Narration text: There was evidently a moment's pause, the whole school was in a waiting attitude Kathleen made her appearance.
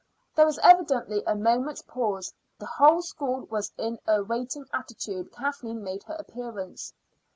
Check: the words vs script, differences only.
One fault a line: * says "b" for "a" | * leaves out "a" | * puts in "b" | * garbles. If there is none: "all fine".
all fine